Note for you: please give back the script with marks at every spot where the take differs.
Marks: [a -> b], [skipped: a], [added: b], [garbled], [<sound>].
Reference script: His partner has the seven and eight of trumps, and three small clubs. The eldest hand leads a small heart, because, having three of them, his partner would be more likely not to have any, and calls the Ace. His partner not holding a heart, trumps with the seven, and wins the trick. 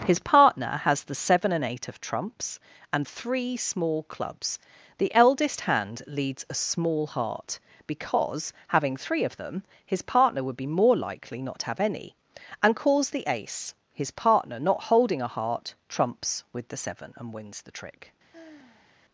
His partner has the seven and eight of trumps, and three small clubs. The eldest hand leads a small heart, because, having three of them, his partner would be more likely not to have any, and calls the Ace. His partner not holding a heart, trumps with the seven, and wins the trick. [sigh]